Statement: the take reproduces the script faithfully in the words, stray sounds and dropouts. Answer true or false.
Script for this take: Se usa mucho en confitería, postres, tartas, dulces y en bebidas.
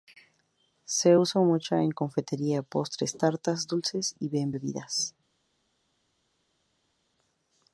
true